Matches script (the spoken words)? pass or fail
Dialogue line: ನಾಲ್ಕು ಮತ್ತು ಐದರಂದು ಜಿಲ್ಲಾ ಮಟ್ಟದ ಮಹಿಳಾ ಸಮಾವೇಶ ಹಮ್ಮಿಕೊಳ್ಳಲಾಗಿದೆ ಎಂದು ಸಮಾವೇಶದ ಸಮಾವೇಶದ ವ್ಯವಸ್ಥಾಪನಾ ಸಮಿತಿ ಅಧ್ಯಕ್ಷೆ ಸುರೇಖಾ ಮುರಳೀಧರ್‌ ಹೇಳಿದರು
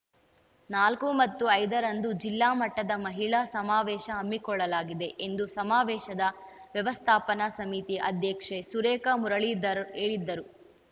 fail